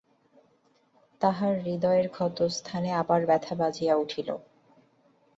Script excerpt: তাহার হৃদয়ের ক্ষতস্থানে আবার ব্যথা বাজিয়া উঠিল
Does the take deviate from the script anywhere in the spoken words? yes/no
no